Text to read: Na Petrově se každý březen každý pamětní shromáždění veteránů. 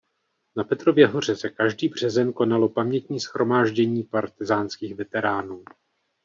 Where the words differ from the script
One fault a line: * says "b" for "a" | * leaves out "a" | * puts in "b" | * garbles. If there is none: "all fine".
* puts in "hoře"
* says "konalo" for "každý"
* puts in "partyzánských"